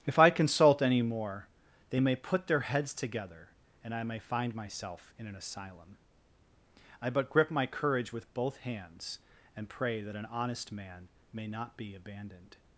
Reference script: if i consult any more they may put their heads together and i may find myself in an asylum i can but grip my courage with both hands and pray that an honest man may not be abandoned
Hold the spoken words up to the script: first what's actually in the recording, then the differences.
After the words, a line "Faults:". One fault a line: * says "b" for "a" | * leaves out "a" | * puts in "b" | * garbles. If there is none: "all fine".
if i consult any more they may put their heads together and i may find myself in an asylum i but grip my courage with both hands and pray that an honest man may not be abandoned
Faults:
* leaves out "can"